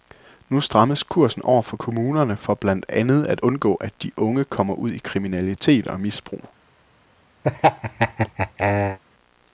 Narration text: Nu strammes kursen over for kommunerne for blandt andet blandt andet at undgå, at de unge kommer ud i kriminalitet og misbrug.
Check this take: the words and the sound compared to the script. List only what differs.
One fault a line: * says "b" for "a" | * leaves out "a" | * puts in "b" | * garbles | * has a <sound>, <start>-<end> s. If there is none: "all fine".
* leaves out "blandt andet"
* has a laugh, 7.4-9.0 s